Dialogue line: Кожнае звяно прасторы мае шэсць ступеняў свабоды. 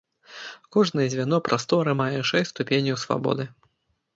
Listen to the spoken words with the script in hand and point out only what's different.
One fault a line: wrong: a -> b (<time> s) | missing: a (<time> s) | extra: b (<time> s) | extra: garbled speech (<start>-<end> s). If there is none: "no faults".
no faults